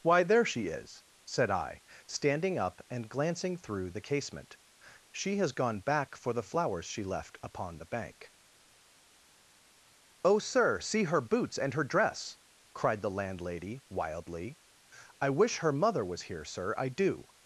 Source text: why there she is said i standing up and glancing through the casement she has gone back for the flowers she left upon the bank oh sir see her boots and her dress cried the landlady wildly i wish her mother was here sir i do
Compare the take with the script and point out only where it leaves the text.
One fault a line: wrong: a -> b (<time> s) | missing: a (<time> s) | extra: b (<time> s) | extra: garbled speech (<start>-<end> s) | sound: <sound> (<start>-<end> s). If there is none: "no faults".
no faults